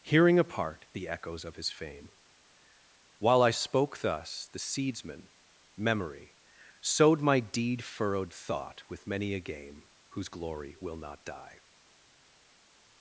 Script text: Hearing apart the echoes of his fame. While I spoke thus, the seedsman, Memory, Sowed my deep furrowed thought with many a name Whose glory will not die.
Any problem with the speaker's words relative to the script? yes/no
yes